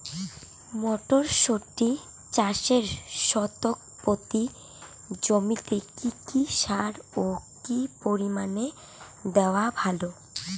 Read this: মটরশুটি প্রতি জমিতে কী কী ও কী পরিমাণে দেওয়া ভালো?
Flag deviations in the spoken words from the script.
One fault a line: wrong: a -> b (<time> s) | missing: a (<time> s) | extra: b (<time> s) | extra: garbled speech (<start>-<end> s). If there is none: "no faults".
extra: চাষে শতক (2.3 s)
extra: সার (6.5 s)